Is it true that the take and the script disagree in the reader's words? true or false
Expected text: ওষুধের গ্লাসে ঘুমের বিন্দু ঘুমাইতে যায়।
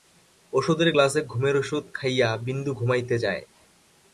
true